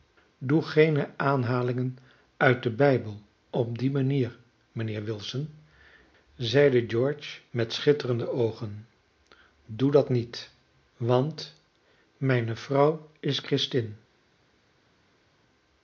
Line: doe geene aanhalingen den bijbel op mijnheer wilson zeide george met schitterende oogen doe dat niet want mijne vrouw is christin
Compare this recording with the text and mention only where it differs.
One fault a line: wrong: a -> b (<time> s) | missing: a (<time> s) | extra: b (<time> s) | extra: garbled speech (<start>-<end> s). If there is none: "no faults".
extra: uit (2.4 s)
extra: die manier (3.8 s)